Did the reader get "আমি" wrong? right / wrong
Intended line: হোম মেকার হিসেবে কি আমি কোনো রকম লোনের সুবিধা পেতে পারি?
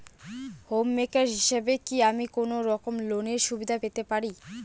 right